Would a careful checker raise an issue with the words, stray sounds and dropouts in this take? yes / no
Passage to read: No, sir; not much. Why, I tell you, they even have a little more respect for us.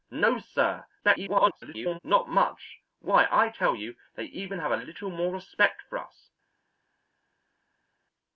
yes